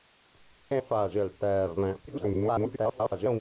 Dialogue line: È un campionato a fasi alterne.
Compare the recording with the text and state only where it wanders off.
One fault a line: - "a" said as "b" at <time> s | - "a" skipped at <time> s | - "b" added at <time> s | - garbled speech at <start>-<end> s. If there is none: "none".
- "un campionato" skipped at 0.8 s
- garbled speech at 2.1-3.4 s